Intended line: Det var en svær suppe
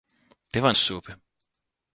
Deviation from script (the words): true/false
true